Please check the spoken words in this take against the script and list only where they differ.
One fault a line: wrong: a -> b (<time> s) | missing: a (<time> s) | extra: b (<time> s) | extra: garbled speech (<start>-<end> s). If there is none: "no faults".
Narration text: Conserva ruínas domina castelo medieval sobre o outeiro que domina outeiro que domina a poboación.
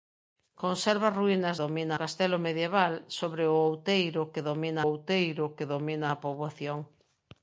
no faults